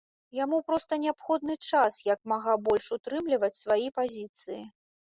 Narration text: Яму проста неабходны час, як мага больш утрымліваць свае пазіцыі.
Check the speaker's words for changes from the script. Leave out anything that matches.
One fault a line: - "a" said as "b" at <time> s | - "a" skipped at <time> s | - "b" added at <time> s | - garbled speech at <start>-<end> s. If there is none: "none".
none